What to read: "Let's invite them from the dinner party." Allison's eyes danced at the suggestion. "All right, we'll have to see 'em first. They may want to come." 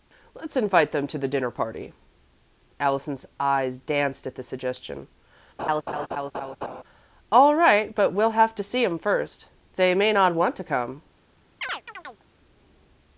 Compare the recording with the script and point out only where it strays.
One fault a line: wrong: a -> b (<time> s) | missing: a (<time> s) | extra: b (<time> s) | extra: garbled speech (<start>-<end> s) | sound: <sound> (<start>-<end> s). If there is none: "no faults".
wrong: from -> to (1.1 s)
sound: laugh (5.6-6.8 s)
extra: but (7.9 s)
extra: not (10.1 s)
sound: chirp (11.6-12.2 s)